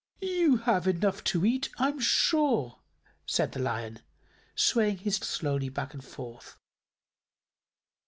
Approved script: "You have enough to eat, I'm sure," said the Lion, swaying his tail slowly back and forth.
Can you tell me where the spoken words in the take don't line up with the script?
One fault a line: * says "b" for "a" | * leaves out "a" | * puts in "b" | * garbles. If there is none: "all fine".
* leaves out "tail"